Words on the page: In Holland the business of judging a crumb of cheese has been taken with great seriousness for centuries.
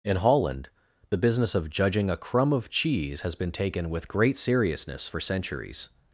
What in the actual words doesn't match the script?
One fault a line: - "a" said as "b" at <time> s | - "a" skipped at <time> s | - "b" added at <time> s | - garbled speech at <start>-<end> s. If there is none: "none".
none